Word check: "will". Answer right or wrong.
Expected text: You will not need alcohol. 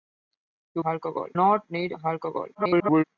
wrong